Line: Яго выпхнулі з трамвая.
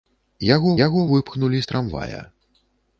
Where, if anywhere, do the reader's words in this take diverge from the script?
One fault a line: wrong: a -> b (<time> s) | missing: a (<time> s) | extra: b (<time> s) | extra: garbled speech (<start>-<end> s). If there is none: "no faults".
extra: яго (0.9 s)